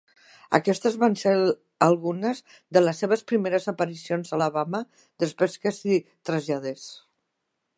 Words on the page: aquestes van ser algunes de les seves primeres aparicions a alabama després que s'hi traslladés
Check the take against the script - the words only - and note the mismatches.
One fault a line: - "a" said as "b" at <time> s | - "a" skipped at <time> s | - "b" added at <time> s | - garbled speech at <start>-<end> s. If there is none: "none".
none